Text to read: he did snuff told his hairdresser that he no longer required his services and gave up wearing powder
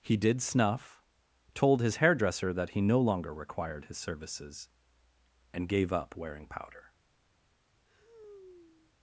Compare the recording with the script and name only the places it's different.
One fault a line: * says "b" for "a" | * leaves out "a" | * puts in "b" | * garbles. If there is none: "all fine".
all fine